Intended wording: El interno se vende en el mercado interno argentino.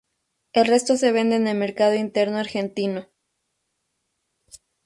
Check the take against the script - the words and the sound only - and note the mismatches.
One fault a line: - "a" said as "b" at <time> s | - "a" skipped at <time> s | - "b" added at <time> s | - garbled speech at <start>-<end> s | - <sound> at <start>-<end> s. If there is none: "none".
- "interno" said as "resto" at 0.7 s